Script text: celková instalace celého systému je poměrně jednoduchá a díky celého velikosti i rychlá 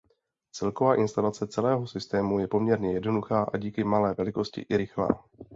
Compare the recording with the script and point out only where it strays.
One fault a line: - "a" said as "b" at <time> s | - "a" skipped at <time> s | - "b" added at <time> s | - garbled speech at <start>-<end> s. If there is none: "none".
- "celého" said as "malé" at 3.8 s